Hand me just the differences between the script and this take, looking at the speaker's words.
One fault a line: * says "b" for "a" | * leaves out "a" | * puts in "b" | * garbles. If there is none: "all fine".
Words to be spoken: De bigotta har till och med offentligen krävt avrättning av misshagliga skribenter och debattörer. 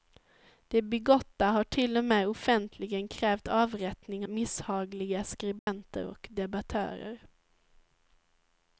* leaves out "av"